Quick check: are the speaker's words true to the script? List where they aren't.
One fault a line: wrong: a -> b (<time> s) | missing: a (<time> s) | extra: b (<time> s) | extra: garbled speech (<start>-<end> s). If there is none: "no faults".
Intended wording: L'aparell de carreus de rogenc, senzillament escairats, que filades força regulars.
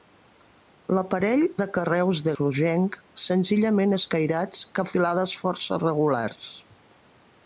no faults